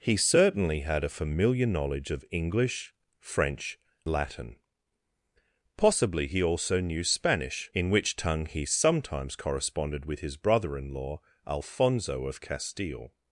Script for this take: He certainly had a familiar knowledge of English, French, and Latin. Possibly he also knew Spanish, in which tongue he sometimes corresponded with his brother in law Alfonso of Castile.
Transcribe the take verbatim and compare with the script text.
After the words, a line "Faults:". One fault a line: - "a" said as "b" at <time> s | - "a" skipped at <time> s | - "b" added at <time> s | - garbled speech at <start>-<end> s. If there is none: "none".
He certainly had a familiar knowledge of English, French, Latin. Possibly he also knew Spanish, in which tongue he sometimes corresponded with his brother in law Alfonso of Castile.
Faults:
- "and" skipped at 3.8 s